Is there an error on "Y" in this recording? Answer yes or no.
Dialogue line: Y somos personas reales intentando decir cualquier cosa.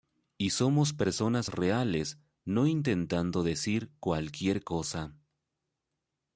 no